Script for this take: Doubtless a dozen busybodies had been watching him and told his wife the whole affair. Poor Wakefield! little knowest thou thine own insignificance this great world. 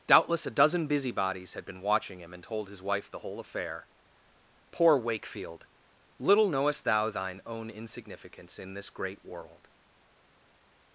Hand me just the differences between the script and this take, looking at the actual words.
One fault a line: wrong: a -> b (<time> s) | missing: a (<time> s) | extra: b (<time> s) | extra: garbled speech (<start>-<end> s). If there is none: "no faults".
extra: in (8.6 s)